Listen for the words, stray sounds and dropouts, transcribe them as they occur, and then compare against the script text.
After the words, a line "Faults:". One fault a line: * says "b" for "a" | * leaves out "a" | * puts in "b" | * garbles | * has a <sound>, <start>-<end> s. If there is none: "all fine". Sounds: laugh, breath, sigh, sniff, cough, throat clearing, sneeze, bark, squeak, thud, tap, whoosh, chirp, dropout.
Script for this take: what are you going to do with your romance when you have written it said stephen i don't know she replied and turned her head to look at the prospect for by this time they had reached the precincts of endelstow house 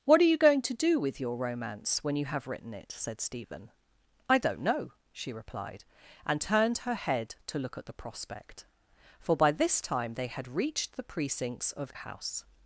what are you going to do with your romance when you have written it said stephen i don't know she replied and turned her head to look at the prospect for by this time they had reached the precincts of house
Faults:
* leaves out "endelstow"